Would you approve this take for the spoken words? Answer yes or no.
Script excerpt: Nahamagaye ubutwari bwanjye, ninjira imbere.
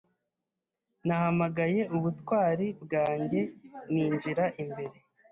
yes